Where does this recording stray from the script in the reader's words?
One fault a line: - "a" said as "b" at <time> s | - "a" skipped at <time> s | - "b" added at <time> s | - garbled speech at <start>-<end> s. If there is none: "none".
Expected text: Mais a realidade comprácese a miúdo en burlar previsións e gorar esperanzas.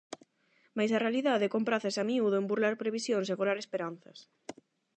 none